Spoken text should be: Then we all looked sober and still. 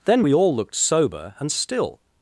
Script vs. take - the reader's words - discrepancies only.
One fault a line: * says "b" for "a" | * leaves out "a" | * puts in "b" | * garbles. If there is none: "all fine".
all fine